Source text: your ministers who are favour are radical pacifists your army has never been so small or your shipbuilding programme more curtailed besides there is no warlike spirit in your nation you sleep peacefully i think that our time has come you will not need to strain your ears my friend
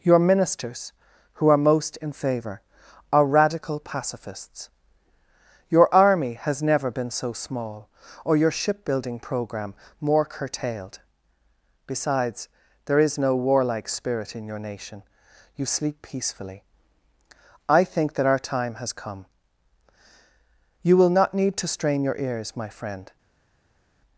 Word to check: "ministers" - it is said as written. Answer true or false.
true